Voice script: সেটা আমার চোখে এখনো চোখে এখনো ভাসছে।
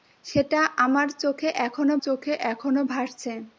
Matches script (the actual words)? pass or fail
pass